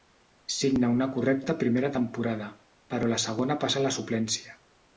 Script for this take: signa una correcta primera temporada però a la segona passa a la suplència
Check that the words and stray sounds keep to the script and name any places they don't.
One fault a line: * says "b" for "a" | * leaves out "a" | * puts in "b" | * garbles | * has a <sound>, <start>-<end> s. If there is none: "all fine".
all fine